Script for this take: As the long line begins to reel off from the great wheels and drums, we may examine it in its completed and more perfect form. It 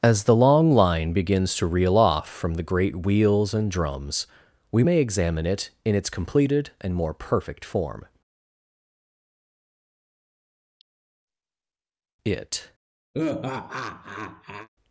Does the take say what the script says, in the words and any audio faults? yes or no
no